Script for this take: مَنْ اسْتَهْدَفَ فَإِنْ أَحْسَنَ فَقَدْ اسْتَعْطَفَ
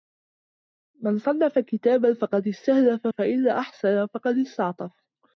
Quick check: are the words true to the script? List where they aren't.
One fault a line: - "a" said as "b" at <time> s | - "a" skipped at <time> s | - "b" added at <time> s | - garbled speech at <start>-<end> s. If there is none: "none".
- "صَنَّفَ كِتَابًا فَقَدْ" added at 1.2 s